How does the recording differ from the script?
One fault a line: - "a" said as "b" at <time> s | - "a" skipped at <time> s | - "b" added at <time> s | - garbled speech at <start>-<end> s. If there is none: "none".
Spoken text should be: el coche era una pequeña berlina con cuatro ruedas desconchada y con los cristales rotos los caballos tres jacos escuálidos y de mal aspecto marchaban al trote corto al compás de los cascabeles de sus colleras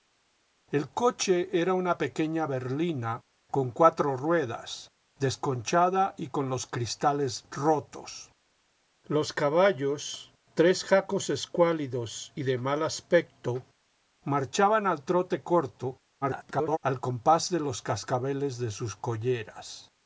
- garbled speech at 16.2-16.8 s